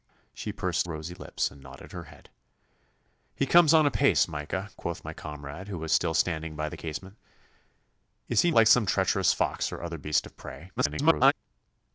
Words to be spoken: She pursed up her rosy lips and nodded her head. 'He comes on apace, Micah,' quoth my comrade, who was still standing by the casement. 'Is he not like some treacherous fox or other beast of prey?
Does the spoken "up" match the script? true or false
false